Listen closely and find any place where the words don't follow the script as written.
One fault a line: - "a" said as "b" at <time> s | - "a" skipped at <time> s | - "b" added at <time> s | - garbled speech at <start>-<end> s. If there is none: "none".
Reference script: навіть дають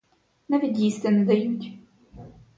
- "їсти не" added at 0.8 s